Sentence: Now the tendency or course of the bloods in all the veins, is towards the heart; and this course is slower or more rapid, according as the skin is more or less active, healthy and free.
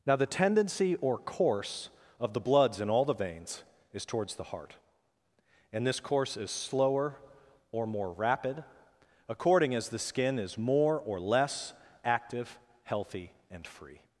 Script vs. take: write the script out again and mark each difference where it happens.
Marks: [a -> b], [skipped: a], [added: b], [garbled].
Now the tendency or course of the bloods in all the veins, is towards the heart; and this course is slower or more rapid, according as the skin is more or less active, healthy and free.